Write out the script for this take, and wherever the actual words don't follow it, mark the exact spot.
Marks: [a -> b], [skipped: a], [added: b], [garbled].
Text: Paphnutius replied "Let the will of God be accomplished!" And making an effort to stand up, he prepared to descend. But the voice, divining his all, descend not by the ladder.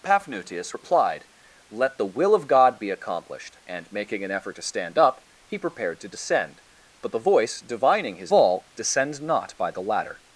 Paphnutius replied "Let the will of God be accomplished!" And making an effort to stand up, he prepared to descend. But the voice, divining his all, descend not by the ladder.